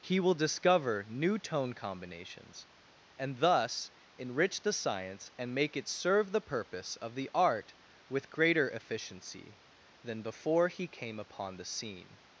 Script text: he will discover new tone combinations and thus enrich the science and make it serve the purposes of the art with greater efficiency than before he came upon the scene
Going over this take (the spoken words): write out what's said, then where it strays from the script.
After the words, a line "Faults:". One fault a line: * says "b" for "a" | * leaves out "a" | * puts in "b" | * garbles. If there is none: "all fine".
he will discover new tone combinations and thus enrich the science and make it serve the purpose of the art with greater efficiency than before he came upon the scene
Faults:
* says "purpose" for "purposes"